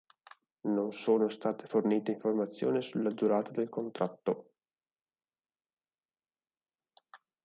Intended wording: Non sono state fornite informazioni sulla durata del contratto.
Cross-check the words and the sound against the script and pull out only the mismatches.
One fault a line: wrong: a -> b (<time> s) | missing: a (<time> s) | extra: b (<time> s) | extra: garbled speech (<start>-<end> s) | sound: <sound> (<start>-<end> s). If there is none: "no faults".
no faults